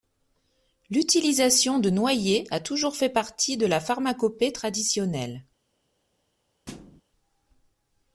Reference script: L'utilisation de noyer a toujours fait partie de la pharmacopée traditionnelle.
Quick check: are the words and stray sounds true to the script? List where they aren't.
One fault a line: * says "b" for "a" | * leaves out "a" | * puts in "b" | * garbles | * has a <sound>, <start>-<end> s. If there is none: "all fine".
* has a thud, 6.7-7.0 s